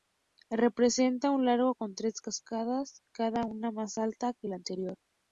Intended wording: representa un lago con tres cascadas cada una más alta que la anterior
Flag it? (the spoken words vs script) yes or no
no